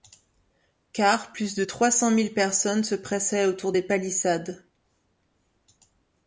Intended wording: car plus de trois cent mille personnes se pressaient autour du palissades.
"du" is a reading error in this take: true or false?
true